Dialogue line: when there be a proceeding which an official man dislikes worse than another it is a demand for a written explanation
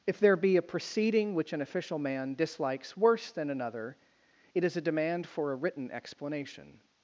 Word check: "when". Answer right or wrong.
wrong